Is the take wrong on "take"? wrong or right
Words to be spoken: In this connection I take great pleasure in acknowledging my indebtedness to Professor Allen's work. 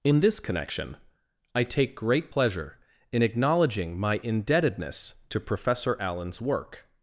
right